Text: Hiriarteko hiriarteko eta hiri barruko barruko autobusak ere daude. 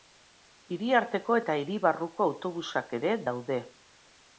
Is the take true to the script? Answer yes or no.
no